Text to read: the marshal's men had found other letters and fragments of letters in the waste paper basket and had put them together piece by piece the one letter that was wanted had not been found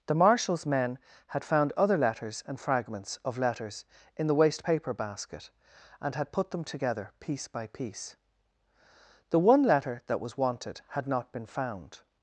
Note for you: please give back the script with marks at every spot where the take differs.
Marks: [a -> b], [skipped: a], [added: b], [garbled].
the marshal's men had found other letters and fragments of letters in the waste paper basket and had put them together piece by piece the one letter that was wanted had not been found